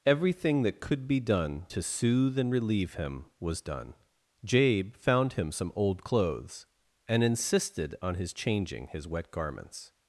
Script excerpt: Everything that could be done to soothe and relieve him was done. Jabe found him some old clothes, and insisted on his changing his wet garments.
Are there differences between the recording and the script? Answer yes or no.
no